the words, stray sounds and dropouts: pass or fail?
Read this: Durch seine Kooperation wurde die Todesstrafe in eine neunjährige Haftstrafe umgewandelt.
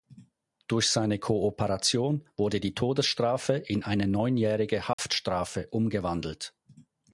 fail